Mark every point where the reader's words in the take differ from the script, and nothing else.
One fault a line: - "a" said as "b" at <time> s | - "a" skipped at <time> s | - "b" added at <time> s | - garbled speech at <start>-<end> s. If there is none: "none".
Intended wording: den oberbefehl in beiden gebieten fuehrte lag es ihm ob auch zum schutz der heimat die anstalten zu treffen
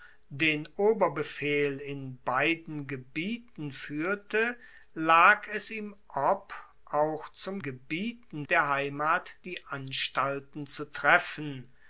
- "schutz" said as "gebieten" at 7.6 s